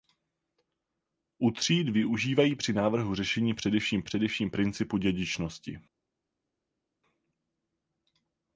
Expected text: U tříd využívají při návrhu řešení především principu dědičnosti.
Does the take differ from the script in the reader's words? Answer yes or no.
yes